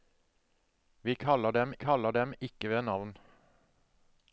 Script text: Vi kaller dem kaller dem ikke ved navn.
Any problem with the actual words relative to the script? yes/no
no